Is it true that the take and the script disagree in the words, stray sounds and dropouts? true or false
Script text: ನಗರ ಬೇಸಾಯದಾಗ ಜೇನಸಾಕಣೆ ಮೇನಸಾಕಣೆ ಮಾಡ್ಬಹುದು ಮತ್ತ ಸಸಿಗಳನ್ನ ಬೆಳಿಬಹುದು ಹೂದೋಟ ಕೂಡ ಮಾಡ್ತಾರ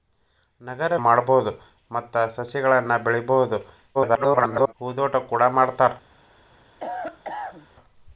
true